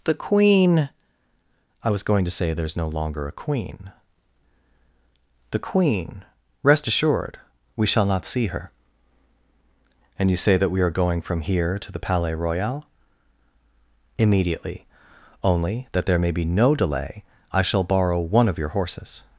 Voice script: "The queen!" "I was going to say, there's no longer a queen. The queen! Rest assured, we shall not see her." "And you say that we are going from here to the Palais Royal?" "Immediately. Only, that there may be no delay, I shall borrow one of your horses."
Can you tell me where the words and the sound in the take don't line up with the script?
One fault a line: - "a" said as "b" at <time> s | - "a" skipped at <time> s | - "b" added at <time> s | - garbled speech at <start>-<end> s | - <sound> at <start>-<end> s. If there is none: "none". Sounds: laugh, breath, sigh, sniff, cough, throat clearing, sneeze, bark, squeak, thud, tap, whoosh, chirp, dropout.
none